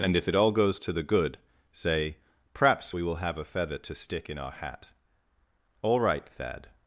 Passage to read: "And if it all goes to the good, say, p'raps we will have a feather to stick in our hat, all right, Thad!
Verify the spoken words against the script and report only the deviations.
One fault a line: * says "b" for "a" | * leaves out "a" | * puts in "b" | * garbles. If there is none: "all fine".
all fine